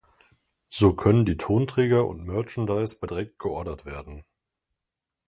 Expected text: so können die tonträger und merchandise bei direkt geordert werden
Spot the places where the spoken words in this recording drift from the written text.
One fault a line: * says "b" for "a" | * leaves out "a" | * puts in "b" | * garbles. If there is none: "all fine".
all fine